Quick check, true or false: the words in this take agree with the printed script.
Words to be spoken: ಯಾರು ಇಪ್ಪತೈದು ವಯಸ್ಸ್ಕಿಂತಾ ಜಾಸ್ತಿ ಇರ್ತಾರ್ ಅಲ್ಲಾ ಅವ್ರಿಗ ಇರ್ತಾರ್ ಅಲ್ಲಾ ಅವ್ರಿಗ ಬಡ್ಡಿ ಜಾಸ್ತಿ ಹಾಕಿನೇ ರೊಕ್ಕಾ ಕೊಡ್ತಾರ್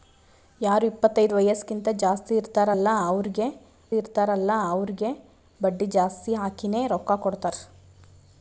true